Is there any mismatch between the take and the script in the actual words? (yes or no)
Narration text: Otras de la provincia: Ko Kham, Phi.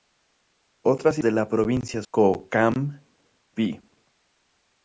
no